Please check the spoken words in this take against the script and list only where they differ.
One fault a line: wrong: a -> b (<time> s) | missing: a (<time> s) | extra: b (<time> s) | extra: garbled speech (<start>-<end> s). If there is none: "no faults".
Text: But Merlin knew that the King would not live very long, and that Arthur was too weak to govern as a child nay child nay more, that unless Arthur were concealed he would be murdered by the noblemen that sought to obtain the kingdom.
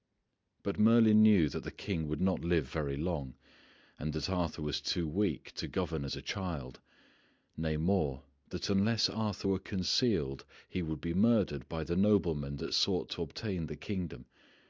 missing: child nay (7.8 s)